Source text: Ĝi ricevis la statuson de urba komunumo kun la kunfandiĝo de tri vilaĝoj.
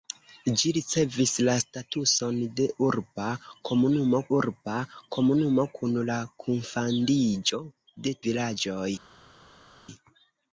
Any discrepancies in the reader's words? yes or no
yes